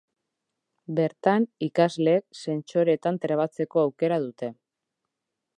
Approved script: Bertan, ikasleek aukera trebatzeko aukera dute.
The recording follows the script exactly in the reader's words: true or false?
false